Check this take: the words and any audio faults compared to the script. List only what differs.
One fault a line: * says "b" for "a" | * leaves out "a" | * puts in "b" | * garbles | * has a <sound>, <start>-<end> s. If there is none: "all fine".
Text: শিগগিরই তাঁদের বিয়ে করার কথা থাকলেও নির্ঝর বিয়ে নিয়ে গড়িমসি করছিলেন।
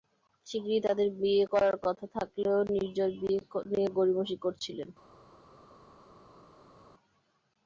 all fine